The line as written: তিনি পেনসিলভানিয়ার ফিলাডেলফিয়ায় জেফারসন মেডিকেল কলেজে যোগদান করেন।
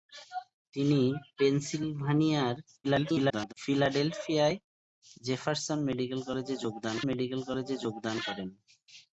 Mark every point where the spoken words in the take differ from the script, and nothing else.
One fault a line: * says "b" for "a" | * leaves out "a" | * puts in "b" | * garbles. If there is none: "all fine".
* garbles
* puts in "মেডিকেল কলেজে যোগদান"